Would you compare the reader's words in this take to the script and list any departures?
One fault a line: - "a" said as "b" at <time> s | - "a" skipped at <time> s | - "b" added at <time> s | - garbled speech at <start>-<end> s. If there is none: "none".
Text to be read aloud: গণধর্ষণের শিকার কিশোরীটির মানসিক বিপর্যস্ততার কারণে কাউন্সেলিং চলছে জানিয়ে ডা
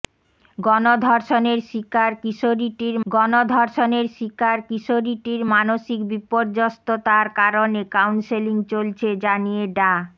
- "গণধর্ষণের শিকার কিশোরীটির" added at 3.0 s